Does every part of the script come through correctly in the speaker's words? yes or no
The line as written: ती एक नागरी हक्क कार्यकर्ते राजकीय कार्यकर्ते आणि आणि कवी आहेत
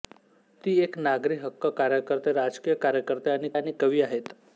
yes